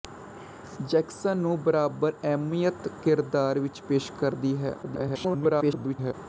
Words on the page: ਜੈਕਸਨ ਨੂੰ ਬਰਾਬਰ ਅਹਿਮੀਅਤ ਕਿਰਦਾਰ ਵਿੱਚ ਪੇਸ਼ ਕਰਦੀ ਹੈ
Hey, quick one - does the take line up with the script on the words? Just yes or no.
no